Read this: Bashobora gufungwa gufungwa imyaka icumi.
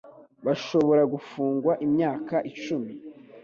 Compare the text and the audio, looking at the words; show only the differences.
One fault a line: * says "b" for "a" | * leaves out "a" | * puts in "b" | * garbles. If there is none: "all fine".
* leaves out "gufungwa"